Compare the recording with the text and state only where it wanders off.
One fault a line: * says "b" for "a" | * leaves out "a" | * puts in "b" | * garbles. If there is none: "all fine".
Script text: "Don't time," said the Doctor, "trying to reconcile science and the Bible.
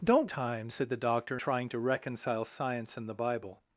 all fine